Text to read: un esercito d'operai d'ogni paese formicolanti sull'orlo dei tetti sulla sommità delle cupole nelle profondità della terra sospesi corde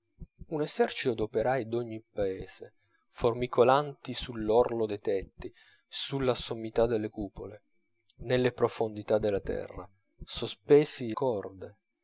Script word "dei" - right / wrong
right